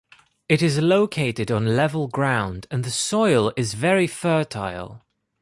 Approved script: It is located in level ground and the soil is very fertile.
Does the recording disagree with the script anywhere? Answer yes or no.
yes